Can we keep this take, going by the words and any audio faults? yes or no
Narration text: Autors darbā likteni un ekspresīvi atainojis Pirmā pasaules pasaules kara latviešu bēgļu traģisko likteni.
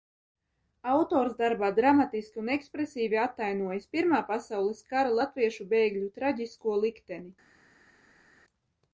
no